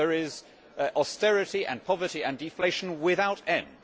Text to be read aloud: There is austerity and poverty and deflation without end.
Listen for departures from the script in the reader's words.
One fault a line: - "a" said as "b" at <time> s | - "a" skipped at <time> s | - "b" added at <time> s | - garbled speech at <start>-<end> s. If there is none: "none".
none